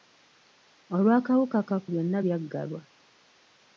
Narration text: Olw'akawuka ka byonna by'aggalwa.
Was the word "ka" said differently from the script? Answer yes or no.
no